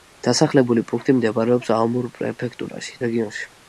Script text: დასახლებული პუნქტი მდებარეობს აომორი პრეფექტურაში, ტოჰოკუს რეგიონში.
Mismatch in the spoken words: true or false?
true